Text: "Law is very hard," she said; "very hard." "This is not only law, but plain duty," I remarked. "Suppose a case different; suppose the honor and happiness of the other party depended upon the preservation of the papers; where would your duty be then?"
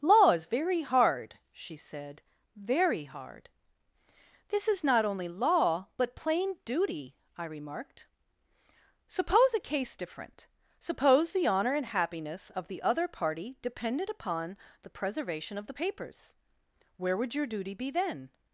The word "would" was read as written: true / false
true